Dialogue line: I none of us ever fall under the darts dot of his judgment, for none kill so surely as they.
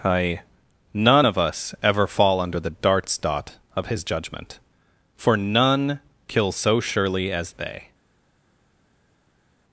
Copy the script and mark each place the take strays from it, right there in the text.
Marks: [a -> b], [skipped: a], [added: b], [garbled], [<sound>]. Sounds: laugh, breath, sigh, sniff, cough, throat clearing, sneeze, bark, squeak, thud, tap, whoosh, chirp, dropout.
I none of us ever fall under the darts dot of his judgment, for none kill so surely as they.